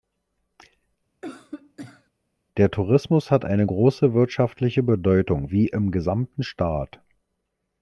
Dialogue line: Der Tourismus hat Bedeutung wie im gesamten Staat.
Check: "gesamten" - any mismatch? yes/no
no